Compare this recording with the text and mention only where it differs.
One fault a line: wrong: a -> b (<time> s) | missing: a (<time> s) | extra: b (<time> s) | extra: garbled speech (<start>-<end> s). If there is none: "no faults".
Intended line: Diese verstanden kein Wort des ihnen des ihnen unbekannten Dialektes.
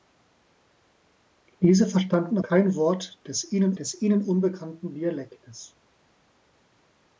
no faults